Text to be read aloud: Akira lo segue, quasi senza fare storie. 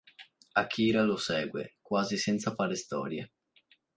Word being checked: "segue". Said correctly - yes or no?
yes